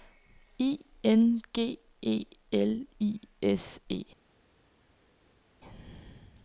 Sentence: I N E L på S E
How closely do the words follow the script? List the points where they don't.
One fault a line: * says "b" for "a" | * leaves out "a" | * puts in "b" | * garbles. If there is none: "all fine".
* puts in "G"
* says "I" for "på"